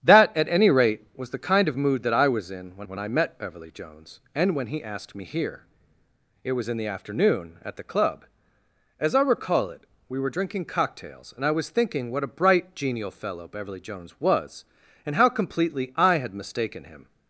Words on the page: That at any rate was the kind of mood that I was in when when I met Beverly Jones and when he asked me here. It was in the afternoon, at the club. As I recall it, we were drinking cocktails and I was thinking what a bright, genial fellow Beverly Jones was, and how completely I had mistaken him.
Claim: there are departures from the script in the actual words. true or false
false